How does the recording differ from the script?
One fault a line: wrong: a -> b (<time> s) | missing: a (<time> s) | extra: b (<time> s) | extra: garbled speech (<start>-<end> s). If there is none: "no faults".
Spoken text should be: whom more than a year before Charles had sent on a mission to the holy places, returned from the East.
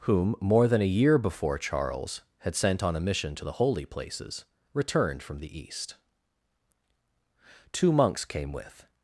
extra: Two monks came with (7.7 s)